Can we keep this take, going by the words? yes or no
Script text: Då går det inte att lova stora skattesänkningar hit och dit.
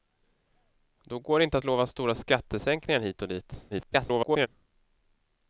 no